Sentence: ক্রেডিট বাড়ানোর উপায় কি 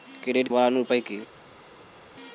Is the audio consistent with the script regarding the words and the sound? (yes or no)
yes